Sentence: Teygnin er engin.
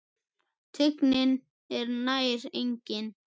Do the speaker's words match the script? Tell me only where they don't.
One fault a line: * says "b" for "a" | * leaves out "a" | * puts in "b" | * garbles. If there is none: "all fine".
* puts in "nær"